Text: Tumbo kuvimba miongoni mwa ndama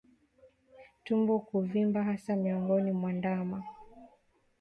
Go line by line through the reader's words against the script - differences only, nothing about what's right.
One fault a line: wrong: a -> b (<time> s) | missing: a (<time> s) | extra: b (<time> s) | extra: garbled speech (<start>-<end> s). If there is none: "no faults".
extra: hasa (2.0 s)